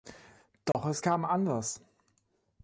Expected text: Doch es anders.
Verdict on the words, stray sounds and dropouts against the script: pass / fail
fail